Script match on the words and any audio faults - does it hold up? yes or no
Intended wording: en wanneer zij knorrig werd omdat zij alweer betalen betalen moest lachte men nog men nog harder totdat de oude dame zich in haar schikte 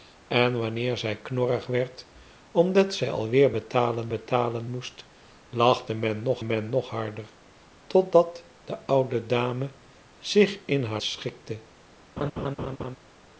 no